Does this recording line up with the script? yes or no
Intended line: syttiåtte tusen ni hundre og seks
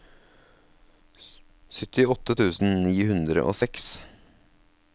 yes